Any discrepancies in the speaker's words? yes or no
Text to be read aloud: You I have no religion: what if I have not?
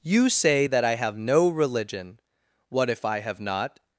yes